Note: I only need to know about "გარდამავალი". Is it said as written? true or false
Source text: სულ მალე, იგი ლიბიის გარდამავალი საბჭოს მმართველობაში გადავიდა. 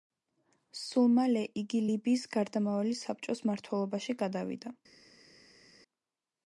true